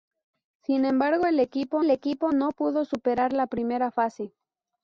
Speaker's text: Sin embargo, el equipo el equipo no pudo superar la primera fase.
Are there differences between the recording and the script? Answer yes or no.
no